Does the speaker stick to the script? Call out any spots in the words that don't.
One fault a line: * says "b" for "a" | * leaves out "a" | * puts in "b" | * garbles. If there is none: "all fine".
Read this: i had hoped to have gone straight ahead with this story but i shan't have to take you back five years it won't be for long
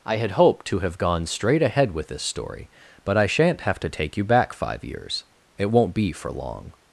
all fine